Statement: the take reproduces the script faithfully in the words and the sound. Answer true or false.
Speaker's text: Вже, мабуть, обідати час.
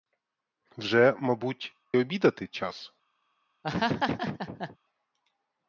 false